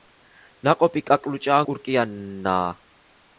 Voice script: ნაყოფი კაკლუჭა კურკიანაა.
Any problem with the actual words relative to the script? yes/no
no